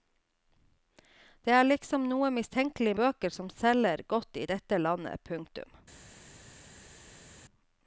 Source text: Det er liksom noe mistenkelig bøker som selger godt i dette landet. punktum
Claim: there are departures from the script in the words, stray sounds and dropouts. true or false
false